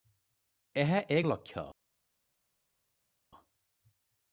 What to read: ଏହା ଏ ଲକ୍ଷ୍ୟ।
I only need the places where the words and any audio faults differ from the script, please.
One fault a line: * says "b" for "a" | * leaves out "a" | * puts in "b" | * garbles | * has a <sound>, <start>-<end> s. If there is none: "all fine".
all fine